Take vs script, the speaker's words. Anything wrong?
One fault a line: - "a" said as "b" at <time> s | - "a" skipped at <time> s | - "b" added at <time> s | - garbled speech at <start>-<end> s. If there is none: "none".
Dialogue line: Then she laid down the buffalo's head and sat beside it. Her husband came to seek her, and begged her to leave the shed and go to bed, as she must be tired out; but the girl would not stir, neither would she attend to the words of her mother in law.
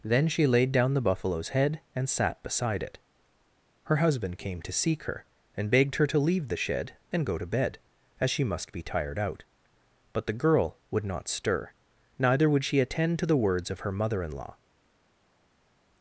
none